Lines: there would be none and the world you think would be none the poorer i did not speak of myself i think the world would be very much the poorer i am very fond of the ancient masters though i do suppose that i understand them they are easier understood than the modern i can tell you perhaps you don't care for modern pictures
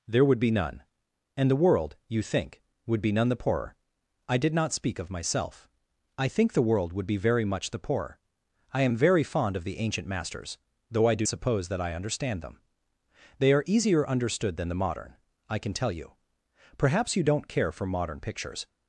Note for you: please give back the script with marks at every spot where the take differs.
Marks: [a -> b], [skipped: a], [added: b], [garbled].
there would be none and the world you think would be none the poorer i did not speak of myself i think the world would be very much the poorer i am very fond of the ancient masters though i do suppose that i understand them they are easier understood than the modern i can tell you perhaps you don't care for modern pictures